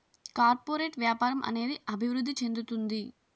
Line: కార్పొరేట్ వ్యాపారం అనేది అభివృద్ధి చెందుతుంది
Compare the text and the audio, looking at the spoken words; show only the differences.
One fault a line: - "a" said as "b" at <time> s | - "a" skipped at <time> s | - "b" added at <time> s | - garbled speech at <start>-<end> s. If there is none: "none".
none